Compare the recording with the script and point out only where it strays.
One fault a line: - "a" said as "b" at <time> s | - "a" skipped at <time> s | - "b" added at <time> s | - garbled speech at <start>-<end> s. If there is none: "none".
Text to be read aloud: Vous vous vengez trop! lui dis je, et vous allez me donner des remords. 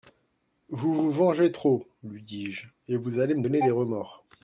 none